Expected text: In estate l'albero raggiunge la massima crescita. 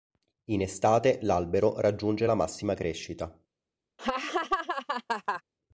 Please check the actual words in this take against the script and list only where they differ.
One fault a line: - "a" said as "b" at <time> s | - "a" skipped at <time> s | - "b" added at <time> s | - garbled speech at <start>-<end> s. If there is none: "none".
none